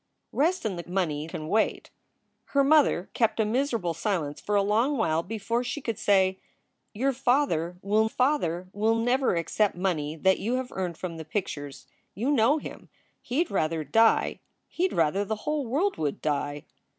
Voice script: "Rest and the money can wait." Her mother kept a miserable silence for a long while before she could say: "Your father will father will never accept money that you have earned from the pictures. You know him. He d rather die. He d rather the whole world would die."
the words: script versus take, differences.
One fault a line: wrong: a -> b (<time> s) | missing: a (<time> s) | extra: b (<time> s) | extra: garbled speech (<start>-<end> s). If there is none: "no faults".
no faults